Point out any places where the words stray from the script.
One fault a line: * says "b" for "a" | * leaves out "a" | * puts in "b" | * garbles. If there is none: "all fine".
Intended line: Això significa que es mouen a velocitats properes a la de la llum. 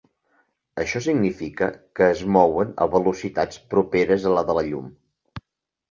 all fine